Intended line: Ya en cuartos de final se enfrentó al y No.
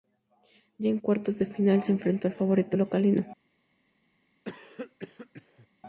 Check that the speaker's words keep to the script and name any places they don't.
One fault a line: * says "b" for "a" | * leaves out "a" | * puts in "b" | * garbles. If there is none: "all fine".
* puts in "favorito local"